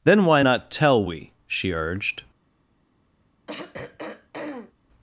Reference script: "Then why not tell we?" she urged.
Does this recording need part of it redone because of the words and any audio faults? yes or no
yes